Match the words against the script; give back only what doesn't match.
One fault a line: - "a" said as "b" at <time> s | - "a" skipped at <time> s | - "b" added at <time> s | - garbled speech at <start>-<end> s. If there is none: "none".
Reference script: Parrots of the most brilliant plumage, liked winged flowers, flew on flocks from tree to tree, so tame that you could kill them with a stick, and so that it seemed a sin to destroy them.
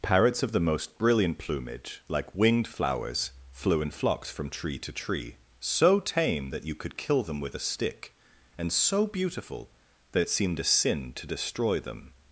- "liked" said as "like" at 2.1 s
- "on" said as "in" at 3.8 s
- "beautiful" added at 9.1 s